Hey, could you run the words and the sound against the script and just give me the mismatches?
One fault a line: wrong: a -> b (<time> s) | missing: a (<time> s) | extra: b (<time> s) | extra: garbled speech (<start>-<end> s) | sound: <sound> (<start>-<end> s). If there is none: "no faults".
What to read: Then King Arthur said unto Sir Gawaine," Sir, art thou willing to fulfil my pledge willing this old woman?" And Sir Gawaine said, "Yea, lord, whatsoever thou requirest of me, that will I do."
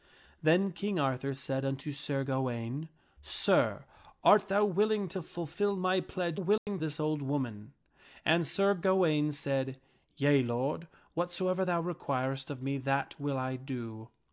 sound: dropout (6.6-6.7 s)